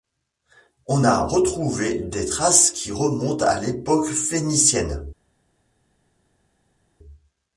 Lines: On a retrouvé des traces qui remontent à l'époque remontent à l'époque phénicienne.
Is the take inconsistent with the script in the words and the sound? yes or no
yes